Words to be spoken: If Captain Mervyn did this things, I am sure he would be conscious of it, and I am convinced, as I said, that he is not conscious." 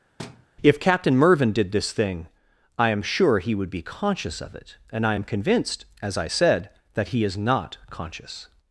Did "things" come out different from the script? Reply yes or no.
yes